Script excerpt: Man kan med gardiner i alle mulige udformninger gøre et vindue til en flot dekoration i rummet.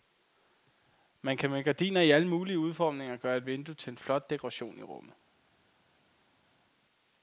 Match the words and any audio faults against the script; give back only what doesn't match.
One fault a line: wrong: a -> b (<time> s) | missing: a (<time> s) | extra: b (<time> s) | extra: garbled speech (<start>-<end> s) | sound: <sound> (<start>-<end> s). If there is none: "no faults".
no faults